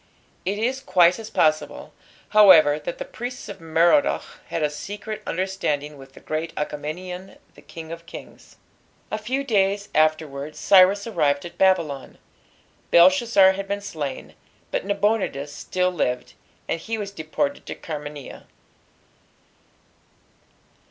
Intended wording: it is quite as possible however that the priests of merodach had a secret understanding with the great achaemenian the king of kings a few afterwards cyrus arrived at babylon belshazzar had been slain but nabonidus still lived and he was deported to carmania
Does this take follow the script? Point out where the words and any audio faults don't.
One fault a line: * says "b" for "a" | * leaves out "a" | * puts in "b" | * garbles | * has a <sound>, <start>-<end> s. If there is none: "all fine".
* puts in "days"